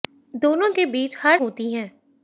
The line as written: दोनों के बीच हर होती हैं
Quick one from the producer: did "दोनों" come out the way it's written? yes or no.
yes